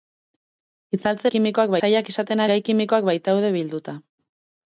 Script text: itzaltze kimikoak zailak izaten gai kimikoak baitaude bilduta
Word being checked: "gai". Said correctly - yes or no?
yes